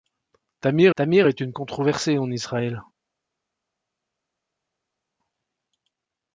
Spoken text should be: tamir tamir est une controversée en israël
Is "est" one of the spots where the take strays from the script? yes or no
no